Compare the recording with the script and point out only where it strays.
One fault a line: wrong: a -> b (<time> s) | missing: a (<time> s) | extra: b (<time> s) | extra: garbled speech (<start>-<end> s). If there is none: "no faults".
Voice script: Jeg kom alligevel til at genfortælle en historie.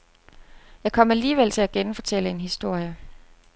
no faults